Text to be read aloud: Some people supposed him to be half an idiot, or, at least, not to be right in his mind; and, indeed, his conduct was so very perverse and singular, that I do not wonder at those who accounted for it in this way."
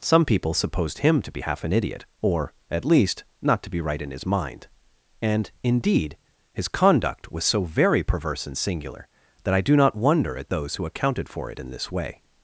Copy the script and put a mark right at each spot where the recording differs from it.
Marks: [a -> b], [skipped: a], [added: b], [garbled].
Some people supposed him to be half an idiot, or, at least, not to be right in his mind; and, indeed, his conduct was so very perverse and singular, that I do not wonder at those who accounted for it in this way."